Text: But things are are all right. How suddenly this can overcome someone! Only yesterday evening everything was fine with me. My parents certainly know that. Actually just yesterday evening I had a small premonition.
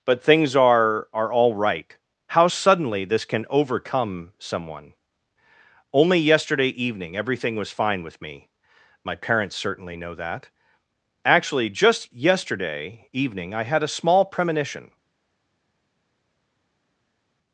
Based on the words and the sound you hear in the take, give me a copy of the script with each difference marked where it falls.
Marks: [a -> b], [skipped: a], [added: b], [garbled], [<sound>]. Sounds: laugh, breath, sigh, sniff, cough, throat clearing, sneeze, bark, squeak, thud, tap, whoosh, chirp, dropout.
But things are are all right. How suddenly this can overcome someone! Only yesterday evening everything was fine with me. My parents certainly know that. Actually just yesterday evening I had a small premonition.